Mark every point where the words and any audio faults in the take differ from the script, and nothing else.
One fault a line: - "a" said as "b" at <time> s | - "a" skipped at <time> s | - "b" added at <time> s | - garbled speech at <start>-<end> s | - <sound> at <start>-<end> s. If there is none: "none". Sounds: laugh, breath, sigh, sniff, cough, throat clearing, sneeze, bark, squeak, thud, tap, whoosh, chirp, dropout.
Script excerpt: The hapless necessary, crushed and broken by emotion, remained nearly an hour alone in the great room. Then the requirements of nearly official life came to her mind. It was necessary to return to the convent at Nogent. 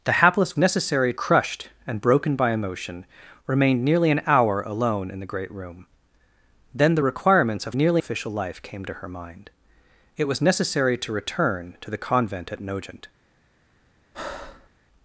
- breath at 14.1-14.7 s